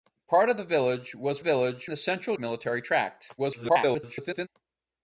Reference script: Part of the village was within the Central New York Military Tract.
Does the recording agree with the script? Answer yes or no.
no